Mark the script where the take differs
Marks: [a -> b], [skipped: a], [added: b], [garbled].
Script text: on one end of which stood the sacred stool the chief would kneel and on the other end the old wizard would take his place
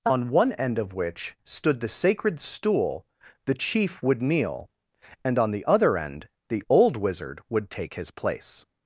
on one end of which stood the sacred stool the chief would kneel and on the other end the old wizard would take his place